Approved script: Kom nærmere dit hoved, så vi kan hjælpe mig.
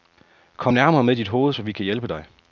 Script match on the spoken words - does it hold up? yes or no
no